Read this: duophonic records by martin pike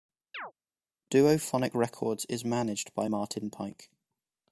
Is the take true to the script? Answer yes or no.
no